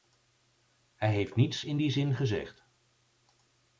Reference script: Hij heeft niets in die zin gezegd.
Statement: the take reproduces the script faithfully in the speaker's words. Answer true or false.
true